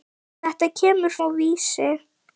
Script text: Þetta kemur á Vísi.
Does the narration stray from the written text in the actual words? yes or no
no